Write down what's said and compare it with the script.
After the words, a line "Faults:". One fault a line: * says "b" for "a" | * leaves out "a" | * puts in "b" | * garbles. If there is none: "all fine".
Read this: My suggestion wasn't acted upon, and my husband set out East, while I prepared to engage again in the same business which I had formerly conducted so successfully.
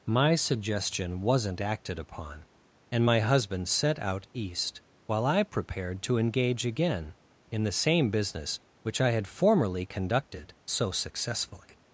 My suggestion wasn't acted upon, and my husband set out East, while I prepared to engage again in the same business which I had formerly conducted so successfully.
Faults:
all fine